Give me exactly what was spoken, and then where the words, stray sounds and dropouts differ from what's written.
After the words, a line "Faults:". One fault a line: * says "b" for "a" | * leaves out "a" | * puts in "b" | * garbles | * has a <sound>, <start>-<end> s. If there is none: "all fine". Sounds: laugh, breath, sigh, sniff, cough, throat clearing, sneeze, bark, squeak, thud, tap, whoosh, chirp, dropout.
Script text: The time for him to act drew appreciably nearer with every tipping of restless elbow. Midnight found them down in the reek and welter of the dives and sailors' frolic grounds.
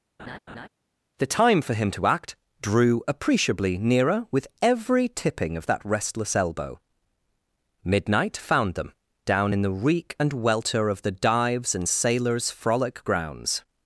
The time for him to act drew appreciably nearer with every tipping of that restless elbow. Midnight found them down in the reek and welter of the dives and sailors' frolic grounds.
Faults:
* has a laugh, 0.2-0.7 s
* puts in "that"